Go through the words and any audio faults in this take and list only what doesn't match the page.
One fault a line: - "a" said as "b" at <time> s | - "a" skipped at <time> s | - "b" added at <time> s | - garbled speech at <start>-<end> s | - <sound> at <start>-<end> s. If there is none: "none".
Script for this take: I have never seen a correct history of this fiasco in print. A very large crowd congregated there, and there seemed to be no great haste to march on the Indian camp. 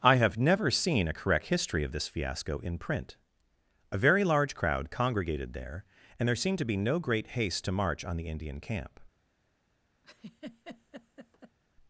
- laugh at 10.0-11.6 s